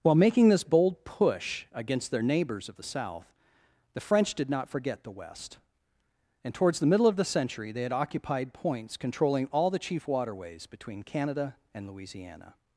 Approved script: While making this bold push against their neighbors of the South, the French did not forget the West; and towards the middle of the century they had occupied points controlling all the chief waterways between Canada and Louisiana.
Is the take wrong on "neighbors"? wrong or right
right